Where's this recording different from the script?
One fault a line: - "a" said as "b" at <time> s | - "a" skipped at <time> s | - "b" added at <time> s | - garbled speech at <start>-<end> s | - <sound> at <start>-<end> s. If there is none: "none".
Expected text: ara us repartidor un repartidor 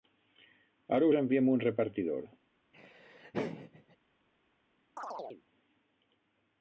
- "repartidor" said as "enviem" at 1.2 s
- laugh at 2.7-4.0 s
- chirp at 5.0-5.4 s